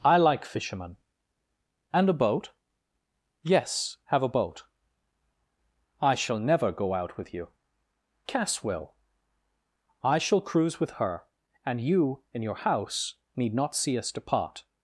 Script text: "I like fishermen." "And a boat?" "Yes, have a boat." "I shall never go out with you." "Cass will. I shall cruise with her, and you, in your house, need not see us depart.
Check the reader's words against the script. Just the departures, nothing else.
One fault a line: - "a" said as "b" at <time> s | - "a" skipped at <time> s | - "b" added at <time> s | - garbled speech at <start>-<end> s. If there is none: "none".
none